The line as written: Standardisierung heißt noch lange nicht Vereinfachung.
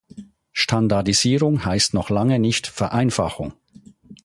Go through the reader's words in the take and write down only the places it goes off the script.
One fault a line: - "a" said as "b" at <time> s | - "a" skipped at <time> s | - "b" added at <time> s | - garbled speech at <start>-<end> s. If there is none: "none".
none